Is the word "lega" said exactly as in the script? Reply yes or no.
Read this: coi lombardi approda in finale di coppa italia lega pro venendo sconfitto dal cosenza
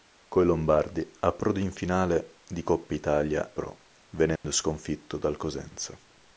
no